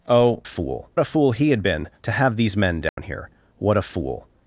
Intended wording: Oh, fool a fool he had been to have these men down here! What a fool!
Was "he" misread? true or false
false